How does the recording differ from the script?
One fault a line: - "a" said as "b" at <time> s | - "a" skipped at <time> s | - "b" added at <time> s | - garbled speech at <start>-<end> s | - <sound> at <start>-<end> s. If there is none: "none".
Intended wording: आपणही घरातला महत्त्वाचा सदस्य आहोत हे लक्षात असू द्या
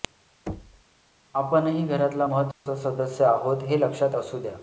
- thud at 0.5-0.8 s
- dropout at 2.5-2.7 s